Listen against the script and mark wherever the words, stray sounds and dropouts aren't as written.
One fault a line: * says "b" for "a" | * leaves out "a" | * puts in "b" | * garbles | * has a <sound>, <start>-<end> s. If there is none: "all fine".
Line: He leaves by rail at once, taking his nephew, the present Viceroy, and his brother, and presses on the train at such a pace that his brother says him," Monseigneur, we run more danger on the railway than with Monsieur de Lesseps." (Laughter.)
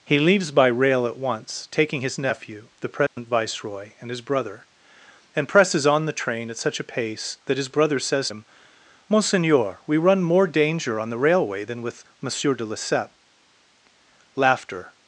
* has a dropout, 3.1-3.2 s